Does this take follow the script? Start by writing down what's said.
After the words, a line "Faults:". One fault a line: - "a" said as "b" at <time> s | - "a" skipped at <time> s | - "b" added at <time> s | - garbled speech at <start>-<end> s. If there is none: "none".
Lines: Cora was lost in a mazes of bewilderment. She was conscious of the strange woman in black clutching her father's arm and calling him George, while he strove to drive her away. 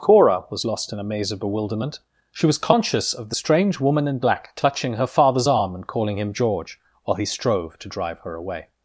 Cora was lost in a maze of bewilderment. She was conscious of the strange woman in black clutching her father's arm and calling him George, while he strove to drive her away.
Faults:
- "mazes" said as "maze" at 1.0 s